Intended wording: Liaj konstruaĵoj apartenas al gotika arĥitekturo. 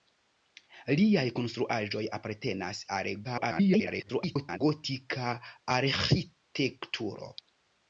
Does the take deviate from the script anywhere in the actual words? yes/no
yes